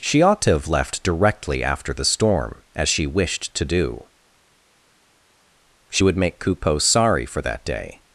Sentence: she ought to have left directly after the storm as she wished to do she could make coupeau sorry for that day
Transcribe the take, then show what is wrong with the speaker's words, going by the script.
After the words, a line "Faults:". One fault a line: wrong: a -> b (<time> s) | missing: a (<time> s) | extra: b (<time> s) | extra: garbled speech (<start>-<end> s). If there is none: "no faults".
she ought to have left directly after the storm as she wished to do she would make coupeau sorry for that day
Faults:
wrong: could -> would (6.0 s)